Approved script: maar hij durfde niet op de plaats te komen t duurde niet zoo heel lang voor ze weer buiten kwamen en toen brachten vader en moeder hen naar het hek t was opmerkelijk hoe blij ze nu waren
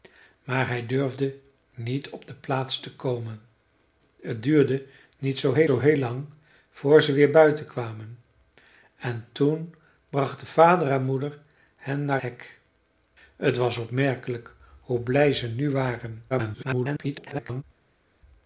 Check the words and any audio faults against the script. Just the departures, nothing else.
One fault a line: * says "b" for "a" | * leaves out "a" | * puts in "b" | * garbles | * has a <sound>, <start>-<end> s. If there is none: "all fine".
* puts in "zoo heel"
* leaves out "het"
* garbles